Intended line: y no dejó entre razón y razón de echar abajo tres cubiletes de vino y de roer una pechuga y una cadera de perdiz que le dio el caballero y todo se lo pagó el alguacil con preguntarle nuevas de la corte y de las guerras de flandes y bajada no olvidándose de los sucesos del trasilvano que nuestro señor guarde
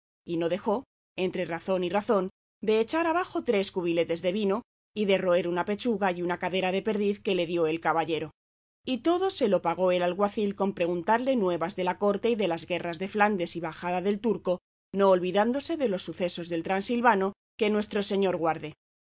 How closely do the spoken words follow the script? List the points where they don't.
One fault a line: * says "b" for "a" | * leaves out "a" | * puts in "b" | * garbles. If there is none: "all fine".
* puts in "del turco"